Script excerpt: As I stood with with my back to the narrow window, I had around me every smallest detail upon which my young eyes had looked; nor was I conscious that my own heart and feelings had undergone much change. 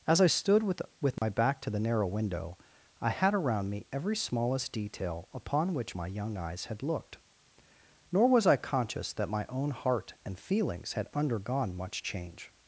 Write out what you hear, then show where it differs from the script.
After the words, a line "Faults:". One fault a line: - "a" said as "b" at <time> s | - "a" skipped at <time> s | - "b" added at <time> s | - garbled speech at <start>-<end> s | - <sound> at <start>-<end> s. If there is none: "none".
As I stood with with my back to the narrow window, I had around me every smallest detail upon which my young eyes had looked; nor was I conscious that my own heart and feelings had undergone much change.
Faults:
- dropout at 1.2-1.2 s